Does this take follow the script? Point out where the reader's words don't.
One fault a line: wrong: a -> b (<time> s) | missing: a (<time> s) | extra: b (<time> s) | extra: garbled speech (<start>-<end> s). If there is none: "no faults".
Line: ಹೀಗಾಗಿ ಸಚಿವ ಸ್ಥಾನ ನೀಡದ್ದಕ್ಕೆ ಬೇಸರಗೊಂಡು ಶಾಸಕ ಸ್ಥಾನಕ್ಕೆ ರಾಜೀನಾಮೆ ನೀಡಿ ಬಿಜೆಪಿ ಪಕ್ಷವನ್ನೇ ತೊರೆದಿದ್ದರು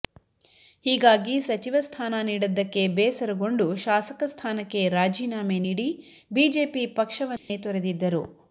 no faults